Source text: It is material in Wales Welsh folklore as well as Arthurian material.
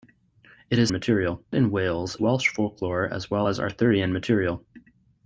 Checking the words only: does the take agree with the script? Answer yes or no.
yes